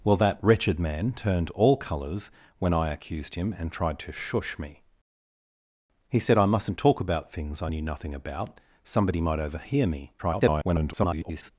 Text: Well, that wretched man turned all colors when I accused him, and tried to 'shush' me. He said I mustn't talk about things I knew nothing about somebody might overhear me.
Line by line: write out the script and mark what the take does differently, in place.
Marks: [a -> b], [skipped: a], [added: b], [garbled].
Well, that wretched man turned all colors when I accused him, and tried to 'shush' me. He said I mustn't talk about things I knew nothing about somebody might overhear me. [garbled]